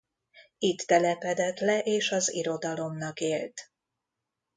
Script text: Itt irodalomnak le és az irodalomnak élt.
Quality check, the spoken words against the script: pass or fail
fail